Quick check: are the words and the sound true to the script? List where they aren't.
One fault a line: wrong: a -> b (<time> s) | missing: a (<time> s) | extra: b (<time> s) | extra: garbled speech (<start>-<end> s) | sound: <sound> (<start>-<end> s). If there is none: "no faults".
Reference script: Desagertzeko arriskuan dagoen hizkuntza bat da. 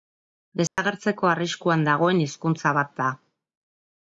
sound: dropout (0.7-0.8 s)